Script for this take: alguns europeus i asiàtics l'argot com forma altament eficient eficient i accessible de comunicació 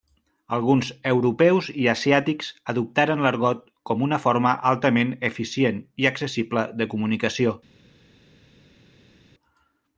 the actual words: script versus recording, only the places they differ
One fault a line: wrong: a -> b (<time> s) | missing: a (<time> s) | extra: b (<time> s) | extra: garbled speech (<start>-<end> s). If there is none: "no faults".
extra: adoptaren (2.7 s)
extra: una (4.1 s)
missing: eficient (5.8 s)